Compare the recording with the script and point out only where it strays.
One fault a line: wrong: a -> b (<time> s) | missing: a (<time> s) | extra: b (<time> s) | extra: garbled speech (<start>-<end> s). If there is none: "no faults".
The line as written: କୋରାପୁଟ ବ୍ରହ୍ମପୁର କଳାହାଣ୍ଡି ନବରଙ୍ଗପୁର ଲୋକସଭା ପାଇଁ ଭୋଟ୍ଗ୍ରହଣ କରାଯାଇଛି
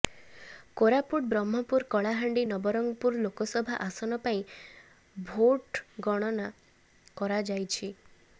extra: ଆସନ (3.9 s)